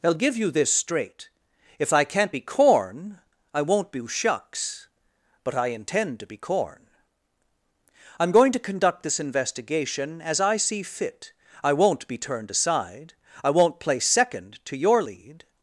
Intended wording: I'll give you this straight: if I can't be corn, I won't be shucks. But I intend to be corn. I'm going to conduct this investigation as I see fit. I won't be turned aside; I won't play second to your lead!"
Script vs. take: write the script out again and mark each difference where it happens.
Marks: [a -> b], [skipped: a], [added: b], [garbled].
I'll give you this straight: if I can't be corn, I won't be shucks. But I intend to be corn. I'm going to conduct this investigation as I see fit. I won't be turned aside; I won't play second to your lead!"